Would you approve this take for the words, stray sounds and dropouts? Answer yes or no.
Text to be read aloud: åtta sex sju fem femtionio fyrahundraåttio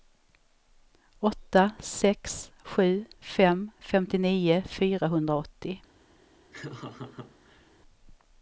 no